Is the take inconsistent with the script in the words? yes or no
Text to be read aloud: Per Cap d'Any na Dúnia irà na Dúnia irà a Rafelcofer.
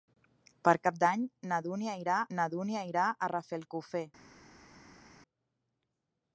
no